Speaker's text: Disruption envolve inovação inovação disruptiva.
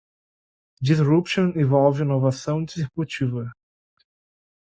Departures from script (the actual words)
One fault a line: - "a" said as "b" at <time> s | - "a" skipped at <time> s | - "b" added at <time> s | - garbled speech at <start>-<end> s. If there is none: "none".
- "inovação" skipped at 2.6 s